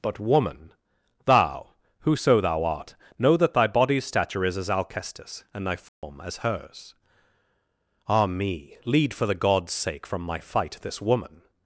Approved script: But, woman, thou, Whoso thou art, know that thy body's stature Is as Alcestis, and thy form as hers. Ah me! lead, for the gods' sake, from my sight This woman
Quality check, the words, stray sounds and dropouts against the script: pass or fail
fail